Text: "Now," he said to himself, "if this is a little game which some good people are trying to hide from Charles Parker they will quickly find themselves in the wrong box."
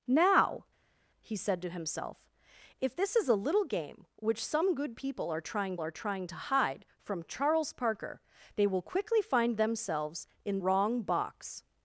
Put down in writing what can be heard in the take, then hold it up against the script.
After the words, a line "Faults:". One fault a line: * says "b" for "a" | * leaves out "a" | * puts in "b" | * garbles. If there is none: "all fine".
"Now," he said to himself, "if this is a little game which some good people are trying are trying to hide from Charles Parker they will quickly find themselves in wrong box."
Faults:
* puts in "are trying"
* leaves out "the"